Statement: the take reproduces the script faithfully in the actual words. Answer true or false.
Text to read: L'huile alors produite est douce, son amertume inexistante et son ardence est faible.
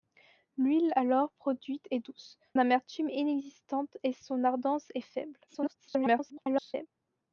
false